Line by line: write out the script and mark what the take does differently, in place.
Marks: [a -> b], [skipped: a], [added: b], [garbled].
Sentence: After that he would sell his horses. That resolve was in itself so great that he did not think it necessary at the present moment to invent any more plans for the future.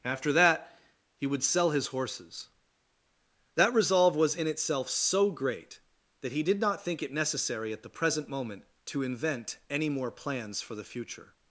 After that he would sell his horses. That resolve was in itself so great that he did not think it necessary at the present moment to invent any more plans for the future.